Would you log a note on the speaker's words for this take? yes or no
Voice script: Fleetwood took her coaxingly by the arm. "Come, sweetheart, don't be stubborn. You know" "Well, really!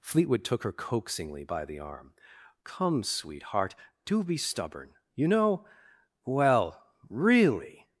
yes